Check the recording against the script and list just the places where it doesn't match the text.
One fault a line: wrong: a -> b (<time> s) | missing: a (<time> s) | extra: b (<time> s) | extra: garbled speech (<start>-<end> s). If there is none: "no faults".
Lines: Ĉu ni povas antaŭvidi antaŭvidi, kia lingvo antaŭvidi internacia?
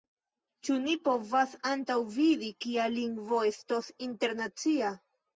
missing: antaŭvidi (2.5 s)
wrong: antaŭvidi -> estos (3.5 s)